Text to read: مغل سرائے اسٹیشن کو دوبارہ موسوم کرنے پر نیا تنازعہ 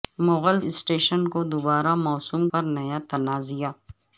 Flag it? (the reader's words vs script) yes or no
yes